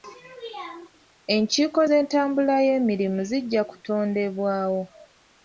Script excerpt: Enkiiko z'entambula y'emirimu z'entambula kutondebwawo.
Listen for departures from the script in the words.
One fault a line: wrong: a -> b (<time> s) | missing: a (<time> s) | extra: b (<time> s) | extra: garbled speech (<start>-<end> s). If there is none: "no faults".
wrong: z'entambula -> zijja (3.3 s)